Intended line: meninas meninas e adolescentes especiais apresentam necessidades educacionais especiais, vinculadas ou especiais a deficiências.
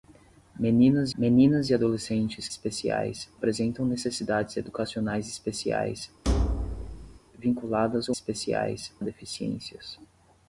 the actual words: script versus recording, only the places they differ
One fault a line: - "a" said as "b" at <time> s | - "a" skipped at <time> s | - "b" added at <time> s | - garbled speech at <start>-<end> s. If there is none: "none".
none